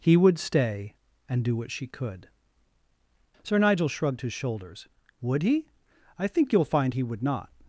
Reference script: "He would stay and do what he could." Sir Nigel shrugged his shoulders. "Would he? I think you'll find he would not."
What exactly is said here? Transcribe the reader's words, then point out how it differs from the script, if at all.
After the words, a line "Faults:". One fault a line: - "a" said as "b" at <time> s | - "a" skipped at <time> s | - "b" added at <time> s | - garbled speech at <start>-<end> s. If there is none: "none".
"He would stay and do what she could." Sir Nigel shrugged his shoulders. "Would he? I think you'll find he would not."
Faults:
- "he" said as "she" at 1.7 s